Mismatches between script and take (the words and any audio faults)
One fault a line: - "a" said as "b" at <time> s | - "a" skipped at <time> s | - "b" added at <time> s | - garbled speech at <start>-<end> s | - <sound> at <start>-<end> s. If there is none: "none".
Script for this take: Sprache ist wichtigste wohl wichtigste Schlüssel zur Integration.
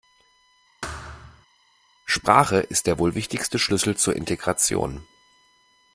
- thud at 0.8-1.5 s
- "wichtigste" said as "der" at 2.9 s